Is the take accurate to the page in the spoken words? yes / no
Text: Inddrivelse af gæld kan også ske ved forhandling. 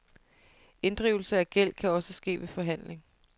yes